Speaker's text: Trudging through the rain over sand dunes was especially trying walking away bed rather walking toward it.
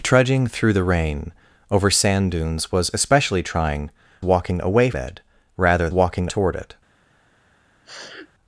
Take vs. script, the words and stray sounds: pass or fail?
fail